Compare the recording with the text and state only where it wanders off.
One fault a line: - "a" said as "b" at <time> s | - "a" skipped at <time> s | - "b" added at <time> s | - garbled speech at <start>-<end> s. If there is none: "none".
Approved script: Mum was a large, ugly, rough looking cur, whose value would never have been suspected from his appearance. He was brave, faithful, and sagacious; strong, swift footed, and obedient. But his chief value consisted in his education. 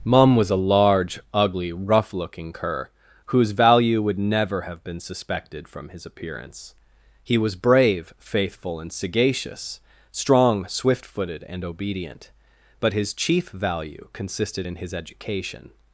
none